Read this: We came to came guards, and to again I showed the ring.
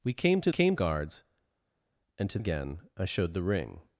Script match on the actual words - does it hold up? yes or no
yes